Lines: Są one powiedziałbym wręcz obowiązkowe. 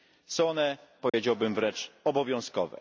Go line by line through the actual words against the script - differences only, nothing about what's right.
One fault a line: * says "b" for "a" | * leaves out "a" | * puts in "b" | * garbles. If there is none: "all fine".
all fine